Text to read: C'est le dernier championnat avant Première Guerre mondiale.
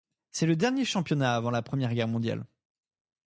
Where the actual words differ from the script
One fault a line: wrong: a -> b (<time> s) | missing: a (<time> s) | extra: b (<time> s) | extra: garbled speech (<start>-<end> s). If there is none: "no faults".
extra: la (1.5 s)